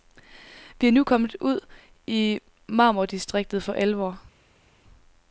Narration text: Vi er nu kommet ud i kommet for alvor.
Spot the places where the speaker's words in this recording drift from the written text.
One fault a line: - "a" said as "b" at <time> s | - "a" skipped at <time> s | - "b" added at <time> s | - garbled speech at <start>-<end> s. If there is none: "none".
- "kommet" said as "marmordistriktet" at 2.7 s